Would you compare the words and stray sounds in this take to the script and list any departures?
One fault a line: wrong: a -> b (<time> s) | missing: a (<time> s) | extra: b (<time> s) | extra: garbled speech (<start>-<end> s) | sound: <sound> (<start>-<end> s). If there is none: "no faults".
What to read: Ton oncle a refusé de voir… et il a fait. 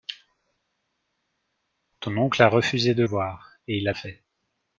no faults